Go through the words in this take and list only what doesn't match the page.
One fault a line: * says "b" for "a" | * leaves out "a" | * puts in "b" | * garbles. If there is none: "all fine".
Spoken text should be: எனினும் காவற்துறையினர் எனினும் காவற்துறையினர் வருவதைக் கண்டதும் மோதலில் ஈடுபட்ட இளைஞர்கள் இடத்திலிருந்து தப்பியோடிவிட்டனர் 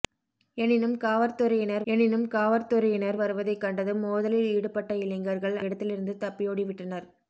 all fine